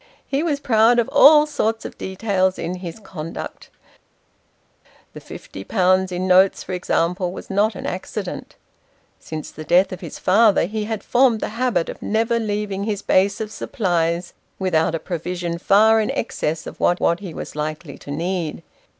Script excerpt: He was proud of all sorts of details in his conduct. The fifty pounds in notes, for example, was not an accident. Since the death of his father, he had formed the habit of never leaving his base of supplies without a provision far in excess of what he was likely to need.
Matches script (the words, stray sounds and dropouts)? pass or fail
fail